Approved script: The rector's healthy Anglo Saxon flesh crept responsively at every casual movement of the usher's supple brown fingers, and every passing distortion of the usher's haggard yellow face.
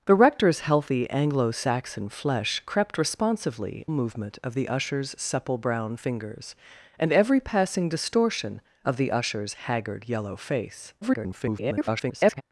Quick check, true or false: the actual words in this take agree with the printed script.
false